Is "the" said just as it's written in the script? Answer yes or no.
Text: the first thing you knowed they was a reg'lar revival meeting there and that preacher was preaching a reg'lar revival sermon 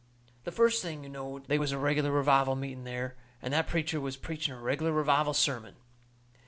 yes